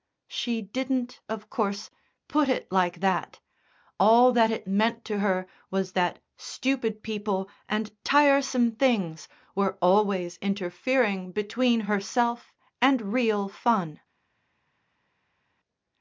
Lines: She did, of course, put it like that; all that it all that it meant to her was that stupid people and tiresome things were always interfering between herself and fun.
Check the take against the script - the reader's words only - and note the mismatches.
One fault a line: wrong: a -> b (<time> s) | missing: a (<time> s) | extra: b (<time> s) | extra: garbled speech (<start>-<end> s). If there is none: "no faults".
wrong: did -> didn't (0.6 s)
missing: all that it (4.7 s)
extra: real (13.1 s)